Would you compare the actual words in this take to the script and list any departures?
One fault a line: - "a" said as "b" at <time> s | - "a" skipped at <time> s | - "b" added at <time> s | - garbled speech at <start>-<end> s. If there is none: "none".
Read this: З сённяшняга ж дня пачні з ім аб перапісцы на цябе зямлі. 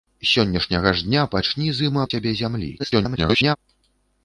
- "аб перапісцы" skipped at 2.0 s
- garbled speech at 2.8-3.6 s